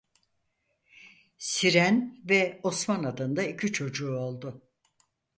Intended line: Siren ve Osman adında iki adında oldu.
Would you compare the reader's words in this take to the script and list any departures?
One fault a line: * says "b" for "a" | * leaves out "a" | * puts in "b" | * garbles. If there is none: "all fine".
* says "çocuğu" for "adında"